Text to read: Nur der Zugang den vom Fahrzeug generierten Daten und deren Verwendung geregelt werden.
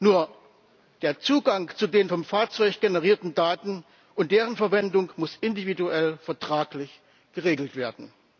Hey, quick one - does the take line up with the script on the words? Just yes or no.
no